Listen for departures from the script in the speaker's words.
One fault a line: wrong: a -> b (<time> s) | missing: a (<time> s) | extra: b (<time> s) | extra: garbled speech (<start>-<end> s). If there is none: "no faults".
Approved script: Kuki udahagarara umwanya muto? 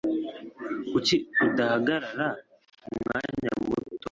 no faults